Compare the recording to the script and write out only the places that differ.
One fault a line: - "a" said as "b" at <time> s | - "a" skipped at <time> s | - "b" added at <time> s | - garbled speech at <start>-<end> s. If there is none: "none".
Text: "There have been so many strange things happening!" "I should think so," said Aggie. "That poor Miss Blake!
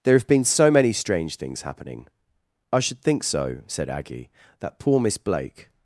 none